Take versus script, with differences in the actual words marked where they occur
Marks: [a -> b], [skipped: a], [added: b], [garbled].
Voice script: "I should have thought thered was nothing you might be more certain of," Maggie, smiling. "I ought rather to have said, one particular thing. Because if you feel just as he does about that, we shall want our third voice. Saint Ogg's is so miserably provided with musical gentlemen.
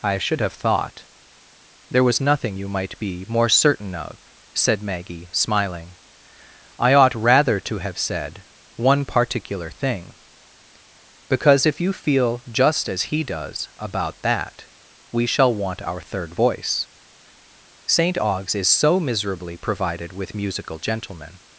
"I should have thought [thered -> there] was nothing you might be more certain of," [added: said] Maggie, smiling. "I ought rather to have said, one particular thing. Because if you feel just as he does about that, we shall want our third voice. Saint Ogg's is so miserably provided with musical gentlemen.